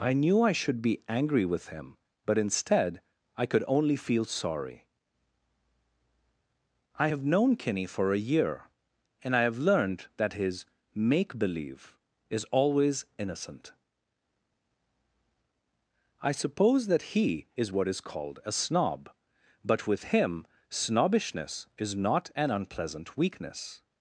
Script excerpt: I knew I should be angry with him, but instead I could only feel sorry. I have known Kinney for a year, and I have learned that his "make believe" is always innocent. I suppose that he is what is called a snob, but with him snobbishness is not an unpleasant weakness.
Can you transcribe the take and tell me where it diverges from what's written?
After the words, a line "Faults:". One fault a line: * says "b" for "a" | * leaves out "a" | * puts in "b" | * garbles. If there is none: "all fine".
I knew I should be angry with him, but instead I could only feel sorry. I have known Kinney for a year, and I have learned that his "make believe" is always innocent. I suppose that he is what is called a snob, but with him snobbishness is not an unpleasant weakness.
Faults:
all fine